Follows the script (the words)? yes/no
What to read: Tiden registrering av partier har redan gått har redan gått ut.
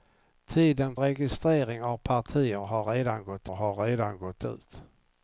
yes